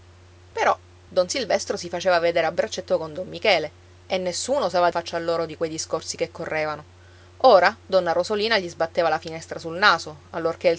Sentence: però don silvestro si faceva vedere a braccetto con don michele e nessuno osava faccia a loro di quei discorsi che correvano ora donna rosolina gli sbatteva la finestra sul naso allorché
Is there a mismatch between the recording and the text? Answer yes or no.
no